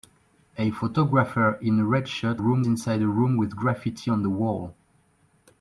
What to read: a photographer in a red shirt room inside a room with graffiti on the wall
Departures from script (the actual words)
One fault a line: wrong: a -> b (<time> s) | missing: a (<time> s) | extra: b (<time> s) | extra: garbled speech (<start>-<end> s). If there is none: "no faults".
no faults